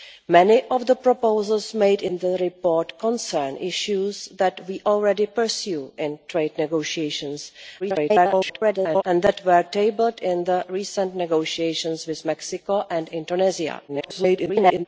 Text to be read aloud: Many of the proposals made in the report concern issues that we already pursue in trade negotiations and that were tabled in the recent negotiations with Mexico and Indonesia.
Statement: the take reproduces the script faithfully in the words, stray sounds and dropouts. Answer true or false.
false